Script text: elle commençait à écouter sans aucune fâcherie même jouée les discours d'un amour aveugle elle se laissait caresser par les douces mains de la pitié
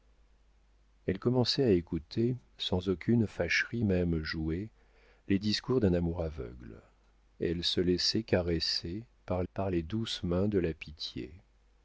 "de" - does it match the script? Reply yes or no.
yes